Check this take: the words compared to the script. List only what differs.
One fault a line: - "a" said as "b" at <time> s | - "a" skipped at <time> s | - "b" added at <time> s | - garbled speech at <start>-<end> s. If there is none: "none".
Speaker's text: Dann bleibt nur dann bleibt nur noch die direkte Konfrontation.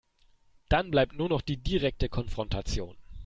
- "dann bleibt nur" skipped at 1.3 s